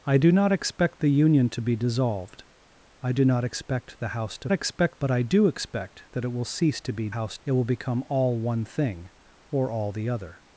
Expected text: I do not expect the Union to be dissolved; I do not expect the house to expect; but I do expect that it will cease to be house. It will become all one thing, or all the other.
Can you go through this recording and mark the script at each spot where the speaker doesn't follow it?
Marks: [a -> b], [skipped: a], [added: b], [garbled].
I do not expect the Union to be dissolved; I do not expect the house to expect; but I do expect that it will cease to be house. It will become all one thing, or all the other.